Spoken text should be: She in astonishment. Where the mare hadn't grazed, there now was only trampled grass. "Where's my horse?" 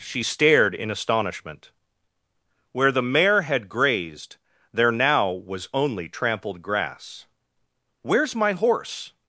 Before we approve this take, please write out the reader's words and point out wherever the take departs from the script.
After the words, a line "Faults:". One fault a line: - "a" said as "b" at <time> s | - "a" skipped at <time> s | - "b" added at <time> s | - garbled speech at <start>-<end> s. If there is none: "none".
She stared in astonishment. Where the mare had grazed, there now was only trampled grass. "Where's my horse?"
Faults:
- "stared" added at 0.2 s
- "hadn't" said as "had" at 3.4 s